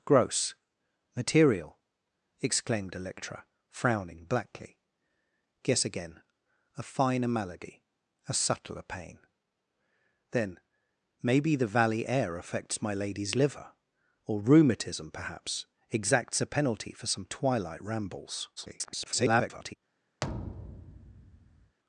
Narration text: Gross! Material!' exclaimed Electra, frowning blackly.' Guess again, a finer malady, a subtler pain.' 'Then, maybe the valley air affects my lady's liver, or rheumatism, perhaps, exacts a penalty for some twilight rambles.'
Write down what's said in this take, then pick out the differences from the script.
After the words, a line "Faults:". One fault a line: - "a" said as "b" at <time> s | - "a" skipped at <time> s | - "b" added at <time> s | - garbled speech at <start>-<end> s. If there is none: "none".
Gross! Material!' exclaimed Electra, frowning blackly.' Guess again, a finer malady, a subtler pain.' 'Then, maybe the valley air affects my lady's liver, or rheumatism, perhaps, exacts a penalty for some twilight rambles.' [garbled]
Faults:
- garbled speech at 18.6-19.8 s